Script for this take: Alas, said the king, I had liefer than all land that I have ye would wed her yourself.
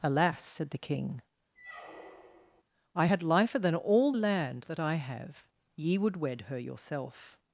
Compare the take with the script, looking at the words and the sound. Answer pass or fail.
fail